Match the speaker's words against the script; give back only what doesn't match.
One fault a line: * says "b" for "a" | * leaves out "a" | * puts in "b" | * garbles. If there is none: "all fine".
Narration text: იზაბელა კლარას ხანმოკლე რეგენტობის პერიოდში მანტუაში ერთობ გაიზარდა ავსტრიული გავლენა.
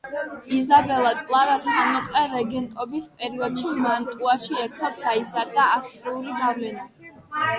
all fine